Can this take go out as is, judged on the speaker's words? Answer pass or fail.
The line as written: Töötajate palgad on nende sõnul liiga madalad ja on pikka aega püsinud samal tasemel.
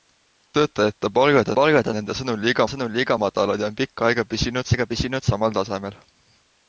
fail